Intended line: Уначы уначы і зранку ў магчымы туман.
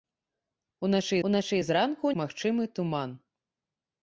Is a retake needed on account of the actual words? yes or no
no